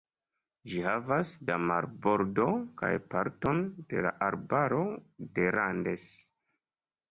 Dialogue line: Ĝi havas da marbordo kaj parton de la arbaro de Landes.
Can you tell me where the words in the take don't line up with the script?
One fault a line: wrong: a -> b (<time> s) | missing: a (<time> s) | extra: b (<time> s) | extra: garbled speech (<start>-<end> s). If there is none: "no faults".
no faults